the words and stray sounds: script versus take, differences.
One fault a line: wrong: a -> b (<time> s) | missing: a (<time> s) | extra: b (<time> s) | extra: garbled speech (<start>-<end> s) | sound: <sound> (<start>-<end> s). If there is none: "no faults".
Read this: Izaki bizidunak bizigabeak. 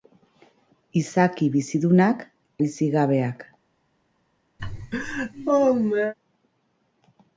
sound: laugh (4.6-6.1 s)